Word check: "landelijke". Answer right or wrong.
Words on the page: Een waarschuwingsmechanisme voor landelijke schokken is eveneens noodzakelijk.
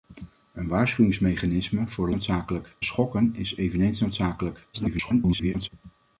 wrong